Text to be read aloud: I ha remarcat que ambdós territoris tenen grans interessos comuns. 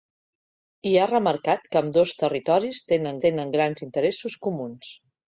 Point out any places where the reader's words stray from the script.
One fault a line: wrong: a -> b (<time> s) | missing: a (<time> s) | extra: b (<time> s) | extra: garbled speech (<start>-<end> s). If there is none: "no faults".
extra: tenen (3.3 s)